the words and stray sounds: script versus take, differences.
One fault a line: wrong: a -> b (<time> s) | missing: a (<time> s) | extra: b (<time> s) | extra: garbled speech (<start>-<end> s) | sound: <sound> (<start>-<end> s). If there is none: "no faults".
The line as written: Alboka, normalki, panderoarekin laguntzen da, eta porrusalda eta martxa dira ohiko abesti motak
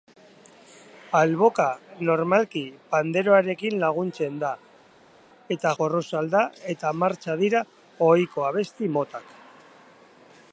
no faults